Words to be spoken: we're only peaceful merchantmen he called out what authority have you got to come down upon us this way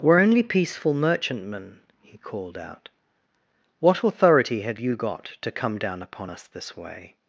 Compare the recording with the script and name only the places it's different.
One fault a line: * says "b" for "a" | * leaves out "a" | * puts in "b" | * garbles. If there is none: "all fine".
all fine